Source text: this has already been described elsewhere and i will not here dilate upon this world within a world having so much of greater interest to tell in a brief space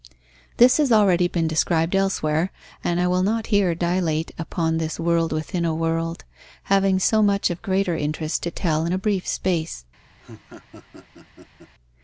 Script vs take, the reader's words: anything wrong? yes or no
no